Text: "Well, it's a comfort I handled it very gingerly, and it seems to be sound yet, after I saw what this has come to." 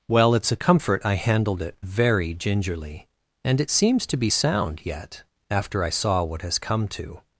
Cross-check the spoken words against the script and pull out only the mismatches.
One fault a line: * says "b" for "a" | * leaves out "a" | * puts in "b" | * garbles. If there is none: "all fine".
* leaves out "this"